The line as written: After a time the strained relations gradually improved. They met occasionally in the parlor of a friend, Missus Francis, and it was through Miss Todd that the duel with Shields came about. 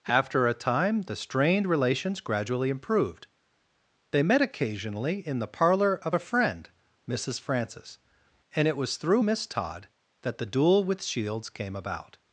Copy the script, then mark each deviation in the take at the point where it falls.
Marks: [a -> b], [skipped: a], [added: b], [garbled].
After a time the strained relations gradually improved. They met occasionally in the parlor of a friend, Missus Francis, and it was through Miss Todd that the duel with Shields came about.